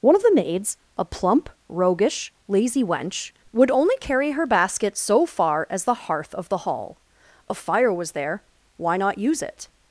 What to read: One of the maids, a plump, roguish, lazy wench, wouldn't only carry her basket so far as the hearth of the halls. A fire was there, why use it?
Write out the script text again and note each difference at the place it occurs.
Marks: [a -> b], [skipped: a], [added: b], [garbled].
One of the maids, a plump, roguish, lazy wench, [wouldn't -> would] only carry her basket so far as the hearth of the [halls. -> hall] A fire was there, why [added: not] use it?